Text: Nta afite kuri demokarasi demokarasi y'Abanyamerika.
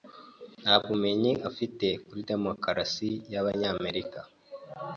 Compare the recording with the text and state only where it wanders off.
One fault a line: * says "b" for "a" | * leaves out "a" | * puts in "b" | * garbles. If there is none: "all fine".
* puts in "bumenyi"
* leaves out "demokarasi"